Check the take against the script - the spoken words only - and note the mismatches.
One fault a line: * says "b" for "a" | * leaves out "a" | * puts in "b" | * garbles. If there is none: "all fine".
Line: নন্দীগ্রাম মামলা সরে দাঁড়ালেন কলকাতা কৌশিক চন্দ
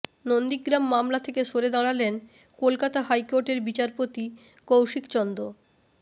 * puts in "থেকে"
* puts in "হাইকোর্টের বিচারপতি"